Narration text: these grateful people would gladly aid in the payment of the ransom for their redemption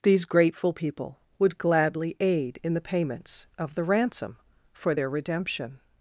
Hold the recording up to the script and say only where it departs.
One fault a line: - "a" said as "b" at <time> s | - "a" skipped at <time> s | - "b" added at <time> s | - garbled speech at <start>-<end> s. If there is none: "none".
- "payment" said as "payments" at 2.8 s